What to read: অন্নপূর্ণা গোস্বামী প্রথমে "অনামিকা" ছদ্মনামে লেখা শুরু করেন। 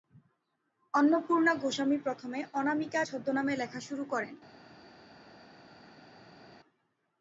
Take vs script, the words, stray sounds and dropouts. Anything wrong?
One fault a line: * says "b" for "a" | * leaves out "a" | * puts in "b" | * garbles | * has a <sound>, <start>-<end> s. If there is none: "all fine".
all fine